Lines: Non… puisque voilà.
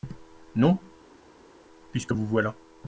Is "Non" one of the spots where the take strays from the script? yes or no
no